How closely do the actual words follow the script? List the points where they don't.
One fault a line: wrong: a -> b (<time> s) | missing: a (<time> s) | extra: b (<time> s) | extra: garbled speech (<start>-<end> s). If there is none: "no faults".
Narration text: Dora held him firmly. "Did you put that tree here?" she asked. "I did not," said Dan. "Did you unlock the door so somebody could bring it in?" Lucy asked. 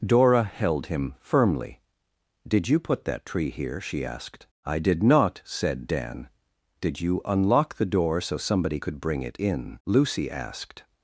no faults